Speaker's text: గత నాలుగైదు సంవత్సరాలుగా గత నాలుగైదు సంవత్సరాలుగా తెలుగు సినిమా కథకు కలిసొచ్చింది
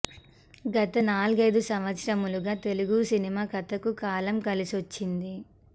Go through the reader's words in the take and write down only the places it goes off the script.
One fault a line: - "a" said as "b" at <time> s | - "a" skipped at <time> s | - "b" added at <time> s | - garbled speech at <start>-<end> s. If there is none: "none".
- "గత నాలుగైదు సంవత్సరాలుగా" skipped at 2.5 s
- "కాలం" added at 4.0 s